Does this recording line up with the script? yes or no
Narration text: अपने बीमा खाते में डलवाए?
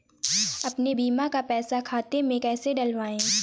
no